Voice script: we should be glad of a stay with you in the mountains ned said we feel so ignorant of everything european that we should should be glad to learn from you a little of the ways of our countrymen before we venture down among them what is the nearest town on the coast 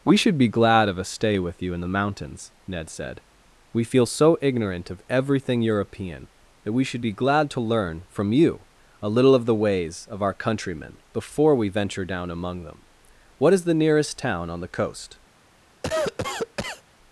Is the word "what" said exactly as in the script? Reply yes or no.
yes